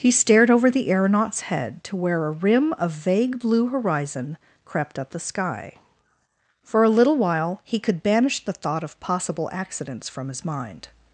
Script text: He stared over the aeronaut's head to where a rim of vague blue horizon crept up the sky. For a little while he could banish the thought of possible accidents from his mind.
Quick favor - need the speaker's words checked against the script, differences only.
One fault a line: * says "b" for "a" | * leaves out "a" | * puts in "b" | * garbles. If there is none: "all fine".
all fine